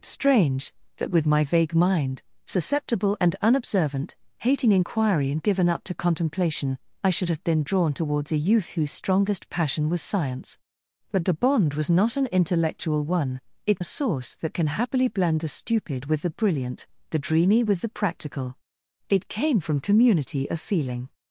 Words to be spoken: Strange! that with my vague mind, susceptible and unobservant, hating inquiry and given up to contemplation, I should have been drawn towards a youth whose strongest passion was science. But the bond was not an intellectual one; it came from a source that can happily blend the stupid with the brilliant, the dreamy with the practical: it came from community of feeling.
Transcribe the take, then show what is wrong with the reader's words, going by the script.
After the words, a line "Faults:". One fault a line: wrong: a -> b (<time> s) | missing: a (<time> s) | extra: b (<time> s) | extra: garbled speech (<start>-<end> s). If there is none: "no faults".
Strange! that with my vague mind, susceptible and unobservant, hating inquiry and given up to contemplation, I should have been drawn towards a youth whose strongest passion was science. But the bond was not an intellectual one; it a source that can happily blend the stupid with the brilliant, the dreamy with the practical: it came from community of feeling.
Faults:
missing: came from (13.8 s)